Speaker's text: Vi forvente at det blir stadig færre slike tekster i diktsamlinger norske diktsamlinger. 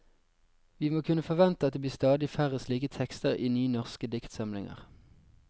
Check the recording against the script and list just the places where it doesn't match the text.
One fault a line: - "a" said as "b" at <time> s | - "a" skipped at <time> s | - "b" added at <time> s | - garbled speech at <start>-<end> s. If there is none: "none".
- "må kunne" added at 0.9 s
- "diktsamlinger" said as "nye" at 3.5 s